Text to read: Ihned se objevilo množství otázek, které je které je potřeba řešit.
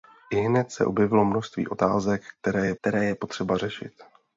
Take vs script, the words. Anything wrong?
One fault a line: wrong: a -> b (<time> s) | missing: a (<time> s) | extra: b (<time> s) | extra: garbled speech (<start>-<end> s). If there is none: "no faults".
no faults